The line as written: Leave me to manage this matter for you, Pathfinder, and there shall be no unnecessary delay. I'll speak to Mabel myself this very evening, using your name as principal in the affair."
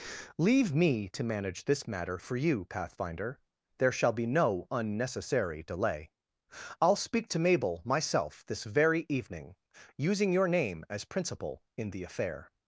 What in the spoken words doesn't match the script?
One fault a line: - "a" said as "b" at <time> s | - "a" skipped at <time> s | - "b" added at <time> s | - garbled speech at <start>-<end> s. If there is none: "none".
- "and" skipped at 3.4 s